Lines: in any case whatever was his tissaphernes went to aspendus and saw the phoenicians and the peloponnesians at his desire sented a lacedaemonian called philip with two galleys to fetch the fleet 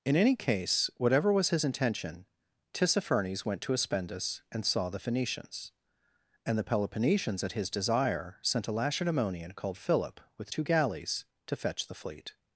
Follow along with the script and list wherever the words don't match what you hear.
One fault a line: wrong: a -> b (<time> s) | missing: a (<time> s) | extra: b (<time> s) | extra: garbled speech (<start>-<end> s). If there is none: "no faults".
extra: intention (1.6 s)
wrong: sented -> sent (8.4 s)